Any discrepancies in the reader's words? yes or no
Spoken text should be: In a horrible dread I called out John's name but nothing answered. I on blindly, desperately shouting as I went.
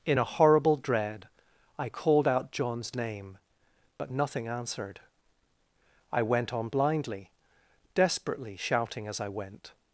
yes